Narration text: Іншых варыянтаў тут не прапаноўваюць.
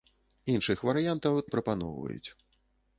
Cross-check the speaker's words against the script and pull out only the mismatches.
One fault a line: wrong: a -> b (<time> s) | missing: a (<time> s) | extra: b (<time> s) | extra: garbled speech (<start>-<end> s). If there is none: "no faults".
missing: тут (1.4 s)